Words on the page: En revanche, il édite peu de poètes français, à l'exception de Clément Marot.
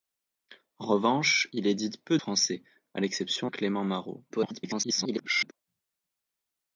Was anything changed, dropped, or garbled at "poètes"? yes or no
yes